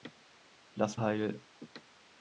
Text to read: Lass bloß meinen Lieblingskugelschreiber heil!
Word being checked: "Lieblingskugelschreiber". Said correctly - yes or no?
no